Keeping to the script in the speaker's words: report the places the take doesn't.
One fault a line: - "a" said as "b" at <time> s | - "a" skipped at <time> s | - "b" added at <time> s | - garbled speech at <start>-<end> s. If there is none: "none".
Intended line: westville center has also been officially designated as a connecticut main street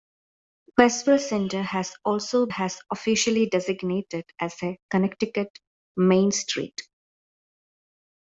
- "been" said as "has" at 2.5 s